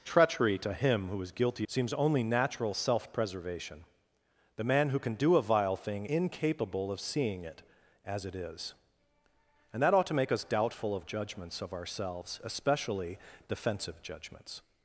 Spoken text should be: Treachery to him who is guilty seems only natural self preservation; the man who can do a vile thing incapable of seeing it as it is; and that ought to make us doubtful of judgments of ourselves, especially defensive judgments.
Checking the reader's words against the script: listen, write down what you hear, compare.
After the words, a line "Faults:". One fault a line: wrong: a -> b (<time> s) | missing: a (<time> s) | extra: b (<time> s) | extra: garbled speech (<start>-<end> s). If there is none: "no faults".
Treachery to him who is guilty seems only natural self preservation; the man who can do a vile thing incapable of seeing it as it is; and that ought to make us doubtful of judgments of ourselves, especially defensive judgments.
Faults:
no faults